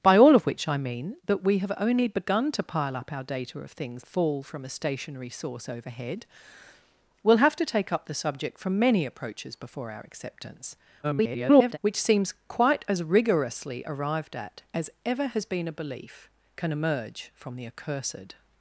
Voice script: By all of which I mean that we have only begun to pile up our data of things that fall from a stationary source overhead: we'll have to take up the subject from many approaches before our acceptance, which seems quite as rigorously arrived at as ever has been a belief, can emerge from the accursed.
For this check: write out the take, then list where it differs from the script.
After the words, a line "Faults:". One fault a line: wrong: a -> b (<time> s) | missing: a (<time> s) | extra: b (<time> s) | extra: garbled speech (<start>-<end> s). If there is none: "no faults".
By all of which I mean that we have only begun to pile up our data of things fall from a stationary source overhead: we'll have to take up the subject from many approaches before our acceptance, [garbled] which seems quite as rigorously arrived at as ever has been a belief, can emerge from the accursed.
Faults:
missing: that (4.0 s)
extra: garbled speech (11.0-11.8 s)